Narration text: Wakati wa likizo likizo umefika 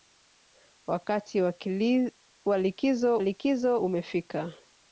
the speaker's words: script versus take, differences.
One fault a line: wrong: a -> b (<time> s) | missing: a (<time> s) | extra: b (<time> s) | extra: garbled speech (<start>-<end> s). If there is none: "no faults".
no faults